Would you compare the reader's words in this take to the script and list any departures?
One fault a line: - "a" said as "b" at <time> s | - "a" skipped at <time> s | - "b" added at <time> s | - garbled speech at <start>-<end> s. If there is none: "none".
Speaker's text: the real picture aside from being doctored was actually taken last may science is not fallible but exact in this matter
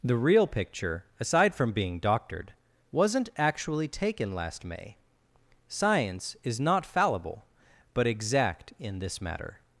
- "was" said as "wasn't" at 2.9 s